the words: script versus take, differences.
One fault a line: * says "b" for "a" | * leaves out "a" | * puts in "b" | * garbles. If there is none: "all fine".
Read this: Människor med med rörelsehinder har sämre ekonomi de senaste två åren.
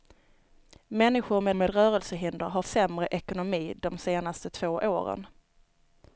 all fine